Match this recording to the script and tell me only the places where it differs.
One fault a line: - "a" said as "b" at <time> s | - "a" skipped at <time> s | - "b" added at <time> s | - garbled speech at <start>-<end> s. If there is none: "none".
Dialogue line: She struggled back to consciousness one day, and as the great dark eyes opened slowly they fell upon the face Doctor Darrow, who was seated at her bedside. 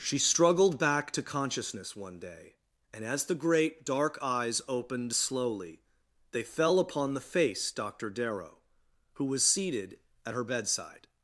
none